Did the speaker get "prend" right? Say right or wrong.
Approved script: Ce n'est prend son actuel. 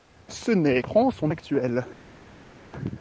right